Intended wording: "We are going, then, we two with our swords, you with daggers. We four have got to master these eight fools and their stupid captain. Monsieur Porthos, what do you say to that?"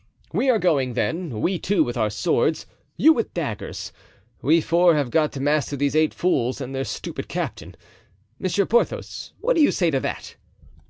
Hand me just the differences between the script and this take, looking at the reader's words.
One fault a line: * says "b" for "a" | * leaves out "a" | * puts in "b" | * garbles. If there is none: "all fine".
all fine